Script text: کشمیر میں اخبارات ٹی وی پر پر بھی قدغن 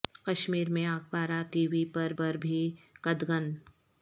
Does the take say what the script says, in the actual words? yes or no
yes